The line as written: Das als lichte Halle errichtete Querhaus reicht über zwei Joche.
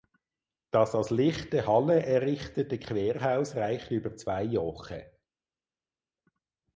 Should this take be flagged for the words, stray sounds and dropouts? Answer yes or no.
no